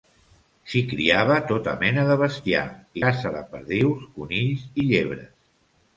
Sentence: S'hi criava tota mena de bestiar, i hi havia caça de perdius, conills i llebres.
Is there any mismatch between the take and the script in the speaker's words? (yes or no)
yes